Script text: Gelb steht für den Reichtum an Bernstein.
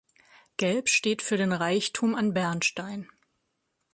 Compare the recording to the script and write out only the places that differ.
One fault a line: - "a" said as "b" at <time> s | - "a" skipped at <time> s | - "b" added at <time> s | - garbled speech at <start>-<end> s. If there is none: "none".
none